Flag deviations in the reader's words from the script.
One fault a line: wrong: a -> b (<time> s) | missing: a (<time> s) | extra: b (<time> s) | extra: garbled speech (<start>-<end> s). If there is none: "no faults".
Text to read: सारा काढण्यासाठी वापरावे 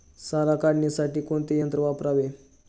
extra: कोणते यंत्र (1.2 s)